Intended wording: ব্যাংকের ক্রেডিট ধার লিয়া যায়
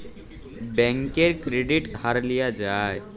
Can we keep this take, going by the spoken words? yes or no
yes